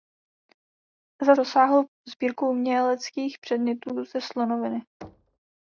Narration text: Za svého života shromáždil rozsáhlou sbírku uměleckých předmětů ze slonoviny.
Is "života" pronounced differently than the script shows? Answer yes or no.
yes